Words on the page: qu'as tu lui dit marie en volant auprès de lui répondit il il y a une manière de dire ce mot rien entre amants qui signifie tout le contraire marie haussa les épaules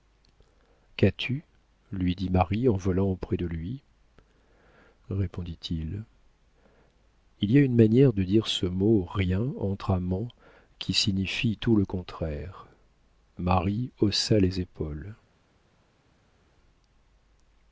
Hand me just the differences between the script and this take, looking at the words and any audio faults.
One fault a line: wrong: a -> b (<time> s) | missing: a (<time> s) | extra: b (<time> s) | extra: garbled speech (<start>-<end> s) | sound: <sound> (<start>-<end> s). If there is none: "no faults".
no faults